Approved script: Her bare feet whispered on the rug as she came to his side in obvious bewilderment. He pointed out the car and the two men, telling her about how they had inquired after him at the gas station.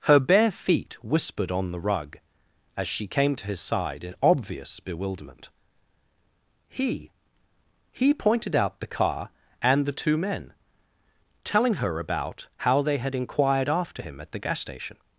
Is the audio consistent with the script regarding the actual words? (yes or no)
no